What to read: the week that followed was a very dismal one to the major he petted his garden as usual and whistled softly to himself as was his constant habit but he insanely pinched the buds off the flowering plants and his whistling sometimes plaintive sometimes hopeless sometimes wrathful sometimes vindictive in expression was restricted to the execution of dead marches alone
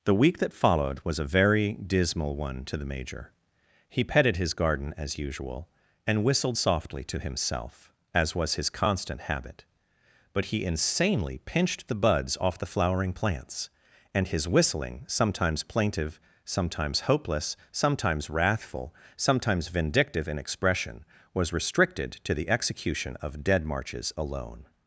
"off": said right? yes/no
yes